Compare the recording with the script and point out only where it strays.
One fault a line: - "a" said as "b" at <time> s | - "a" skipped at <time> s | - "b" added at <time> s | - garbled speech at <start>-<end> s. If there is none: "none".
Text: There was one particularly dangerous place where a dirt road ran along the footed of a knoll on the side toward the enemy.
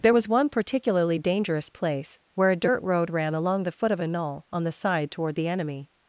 - "footed" said as "foot" at 3.7 s